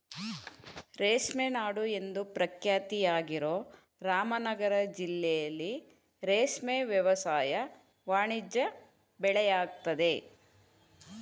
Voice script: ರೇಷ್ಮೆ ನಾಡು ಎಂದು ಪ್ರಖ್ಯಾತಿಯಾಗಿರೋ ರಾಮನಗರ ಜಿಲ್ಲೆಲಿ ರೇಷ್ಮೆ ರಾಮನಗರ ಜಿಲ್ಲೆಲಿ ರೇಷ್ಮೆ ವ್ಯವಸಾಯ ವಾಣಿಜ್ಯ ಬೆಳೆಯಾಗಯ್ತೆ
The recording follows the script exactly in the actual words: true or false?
false